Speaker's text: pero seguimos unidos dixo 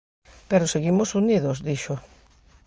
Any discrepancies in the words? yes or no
no